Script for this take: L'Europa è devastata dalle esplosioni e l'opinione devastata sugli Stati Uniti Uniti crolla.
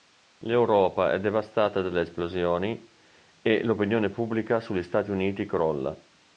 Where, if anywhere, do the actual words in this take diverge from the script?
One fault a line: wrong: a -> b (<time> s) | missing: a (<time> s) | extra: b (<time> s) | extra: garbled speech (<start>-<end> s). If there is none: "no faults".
wrong: devastata -> pubblica (4.1 s)
missing: Uniti (5.5 s)